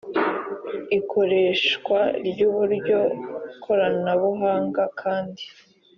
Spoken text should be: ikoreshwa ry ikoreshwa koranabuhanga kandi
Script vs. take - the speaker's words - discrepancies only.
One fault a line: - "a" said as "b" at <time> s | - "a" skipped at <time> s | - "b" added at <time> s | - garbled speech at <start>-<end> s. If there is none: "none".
- "ikoreshwa" said as "uburyo" at 2.5 s